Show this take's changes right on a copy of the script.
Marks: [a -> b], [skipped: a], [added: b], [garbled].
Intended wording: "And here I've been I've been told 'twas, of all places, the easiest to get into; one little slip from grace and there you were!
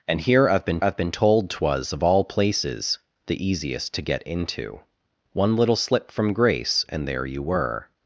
"And here I've been I've been told 'twas, of all places, the easiest to get into; one little slip from grace and there you were!